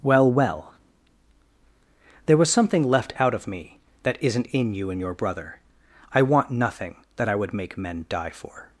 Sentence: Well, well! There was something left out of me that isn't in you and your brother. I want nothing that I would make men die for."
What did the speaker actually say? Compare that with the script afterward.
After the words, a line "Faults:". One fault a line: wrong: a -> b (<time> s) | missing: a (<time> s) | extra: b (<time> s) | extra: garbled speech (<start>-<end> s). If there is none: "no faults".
Well, well! There was something left out of me that isn't in you and your brother. I want nothing that I would make men die for."
Faults:
no faults